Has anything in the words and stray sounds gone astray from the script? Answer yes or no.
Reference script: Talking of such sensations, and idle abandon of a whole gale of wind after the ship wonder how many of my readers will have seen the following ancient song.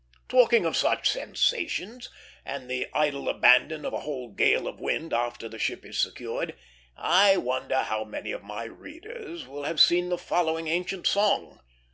yes